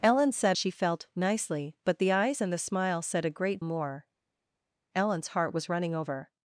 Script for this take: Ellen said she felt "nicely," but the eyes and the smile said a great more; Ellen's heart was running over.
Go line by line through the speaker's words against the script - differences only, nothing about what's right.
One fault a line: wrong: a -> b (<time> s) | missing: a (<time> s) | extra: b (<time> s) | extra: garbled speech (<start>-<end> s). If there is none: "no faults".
no faults